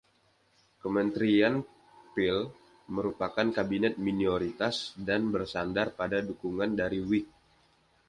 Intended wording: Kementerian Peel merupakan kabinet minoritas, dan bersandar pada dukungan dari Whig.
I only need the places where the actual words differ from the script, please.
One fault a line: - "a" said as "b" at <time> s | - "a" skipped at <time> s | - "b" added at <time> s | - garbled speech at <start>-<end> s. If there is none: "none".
none